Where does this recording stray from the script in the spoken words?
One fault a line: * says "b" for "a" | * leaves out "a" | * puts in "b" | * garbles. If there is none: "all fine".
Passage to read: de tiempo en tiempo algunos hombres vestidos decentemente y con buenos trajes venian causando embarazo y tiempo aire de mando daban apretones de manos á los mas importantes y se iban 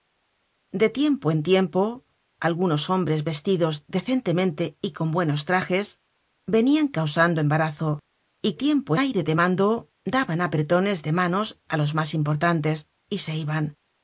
all fine